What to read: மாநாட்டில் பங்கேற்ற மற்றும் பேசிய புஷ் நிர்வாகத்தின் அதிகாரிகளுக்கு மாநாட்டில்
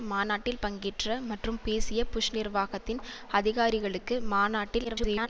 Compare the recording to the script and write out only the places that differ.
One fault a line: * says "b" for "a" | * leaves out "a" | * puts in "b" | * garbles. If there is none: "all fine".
* garbles